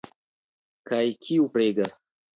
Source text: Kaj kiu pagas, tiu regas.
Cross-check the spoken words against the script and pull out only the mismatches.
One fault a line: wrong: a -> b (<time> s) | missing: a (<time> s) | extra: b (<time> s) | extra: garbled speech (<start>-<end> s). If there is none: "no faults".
missing: pagas tiu (1.4 s)